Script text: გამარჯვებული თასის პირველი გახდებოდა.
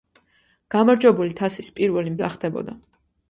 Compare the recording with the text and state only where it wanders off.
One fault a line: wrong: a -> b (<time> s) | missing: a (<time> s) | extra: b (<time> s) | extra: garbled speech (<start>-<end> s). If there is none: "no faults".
no faults